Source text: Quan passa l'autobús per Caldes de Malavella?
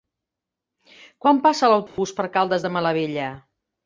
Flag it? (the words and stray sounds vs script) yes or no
yes